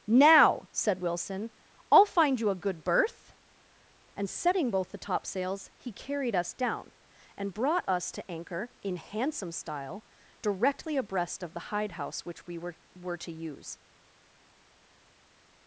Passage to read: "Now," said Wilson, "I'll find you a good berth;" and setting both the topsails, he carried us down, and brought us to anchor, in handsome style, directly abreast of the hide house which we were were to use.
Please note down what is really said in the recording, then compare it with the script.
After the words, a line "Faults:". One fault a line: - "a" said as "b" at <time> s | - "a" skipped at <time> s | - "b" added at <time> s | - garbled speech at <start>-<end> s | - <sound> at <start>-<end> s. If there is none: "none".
"Now," said Wilson, "I'll find you a good berth;" and setting both the topsails, he carried us down, and brought us to anchor, in handsome style, directly abreast of the hide house which we were were to use.
Faults:
none